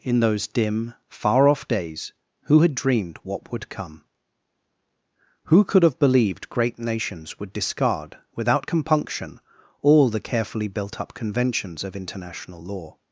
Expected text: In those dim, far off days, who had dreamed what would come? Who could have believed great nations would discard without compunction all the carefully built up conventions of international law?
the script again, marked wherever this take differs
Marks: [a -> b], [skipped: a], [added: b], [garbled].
In those dim, far off days, who had dreamed what would come? Who could have believed great nations would discard without compunction all the carefully built up conventions of international law?